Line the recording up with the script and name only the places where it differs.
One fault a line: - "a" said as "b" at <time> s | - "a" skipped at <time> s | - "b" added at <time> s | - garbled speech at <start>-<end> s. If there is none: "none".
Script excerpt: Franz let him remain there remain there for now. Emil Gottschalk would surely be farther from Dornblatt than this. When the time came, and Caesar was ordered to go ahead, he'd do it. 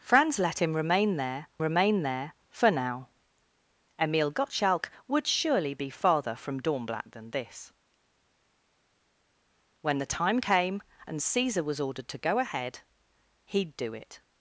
none